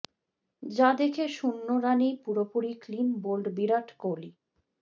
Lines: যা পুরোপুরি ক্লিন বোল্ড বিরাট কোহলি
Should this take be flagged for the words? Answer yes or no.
yes